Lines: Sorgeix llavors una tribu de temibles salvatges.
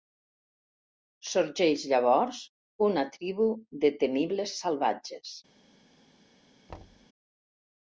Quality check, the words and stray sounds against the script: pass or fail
fail